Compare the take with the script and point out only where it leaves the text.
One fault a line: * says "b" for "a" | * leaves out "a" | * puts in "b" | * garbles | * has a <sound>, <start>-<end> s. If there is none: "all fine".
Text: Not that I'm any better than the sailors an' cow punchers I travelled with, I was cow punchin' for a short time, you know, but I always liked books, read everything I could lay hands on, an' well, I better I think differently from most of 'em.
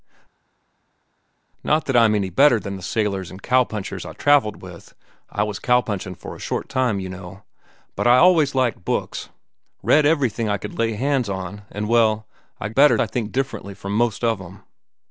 all fine